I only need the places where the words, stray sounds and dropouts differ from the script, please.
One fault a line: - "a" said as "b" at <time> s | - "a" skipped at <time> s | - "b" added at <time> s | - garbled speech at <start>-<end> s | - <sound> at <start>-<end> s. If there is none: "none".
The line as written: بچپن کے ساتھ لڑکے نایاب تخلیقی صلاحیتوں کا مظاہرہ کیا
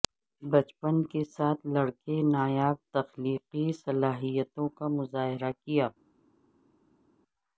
none